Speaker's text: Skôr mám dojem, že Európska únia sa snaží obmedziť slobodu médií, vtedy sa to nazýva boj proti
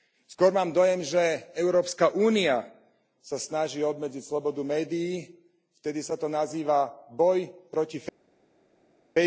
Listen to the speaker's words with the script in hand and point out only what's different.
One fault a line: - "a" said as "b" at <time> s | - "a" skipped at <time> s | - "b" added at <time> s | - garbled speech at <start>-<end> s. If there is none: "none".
none